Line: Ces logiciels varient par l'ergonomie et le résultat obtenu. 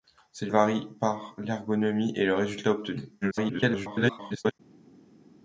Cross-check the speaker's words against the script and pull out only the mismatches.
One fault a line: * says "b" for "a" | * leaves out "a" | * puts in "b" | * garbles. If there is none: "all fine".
* leaves out "logiciels"
* garbles